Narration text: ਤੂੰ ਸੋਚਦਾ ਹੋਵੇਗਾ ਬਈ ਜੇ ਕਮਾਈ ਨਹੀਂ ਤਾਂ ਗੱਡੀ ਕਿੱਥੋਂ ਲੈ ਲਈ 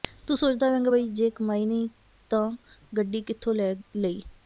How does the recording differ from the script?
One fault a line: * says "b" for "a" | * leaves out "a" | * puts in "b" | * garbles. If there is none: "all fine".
all fine